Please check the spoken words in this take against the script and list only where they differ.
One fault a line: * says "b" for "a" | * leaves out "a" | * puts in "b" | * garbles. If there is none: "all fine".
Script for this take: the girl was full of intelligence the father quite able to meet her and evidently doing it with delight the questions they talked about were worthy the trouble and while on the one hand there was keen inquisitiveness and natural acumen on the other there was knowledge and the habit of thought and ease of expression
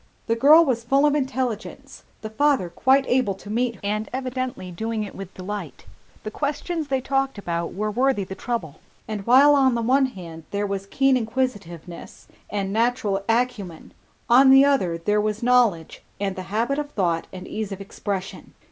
* leaves out "her"